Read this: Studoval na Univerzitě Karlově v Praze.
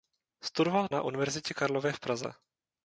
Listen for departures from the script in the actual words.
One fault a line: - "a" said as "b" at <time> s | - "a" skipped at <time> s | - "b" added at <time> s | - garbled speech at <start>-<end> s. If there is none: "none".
none